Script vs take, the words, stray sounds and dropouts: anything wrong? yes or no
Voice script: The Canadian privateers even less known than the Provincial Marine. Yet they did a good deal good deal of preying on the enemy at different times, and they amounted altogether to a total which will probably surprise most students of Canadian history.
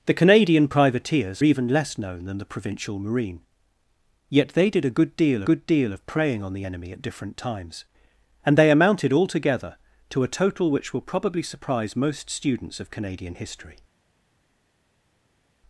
no